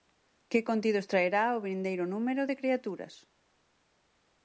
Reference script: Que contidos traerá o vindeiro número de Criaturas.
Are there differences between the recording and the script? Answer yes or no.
no